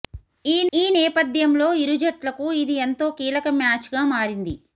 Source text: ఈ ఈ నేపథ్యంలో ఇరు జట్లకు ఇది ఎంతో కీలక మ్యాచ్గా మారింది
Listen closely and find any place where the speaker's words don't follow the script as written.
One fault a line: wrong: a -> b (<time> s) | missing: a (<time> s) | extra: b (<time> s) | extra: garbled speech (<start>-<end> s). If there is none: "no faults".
no faults